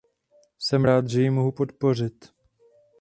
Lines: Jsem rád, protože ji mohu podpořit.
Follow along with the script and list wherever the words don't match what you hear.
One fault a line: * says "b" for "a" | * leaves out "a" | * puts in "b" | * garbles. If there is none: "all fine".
* says "že" for "protože"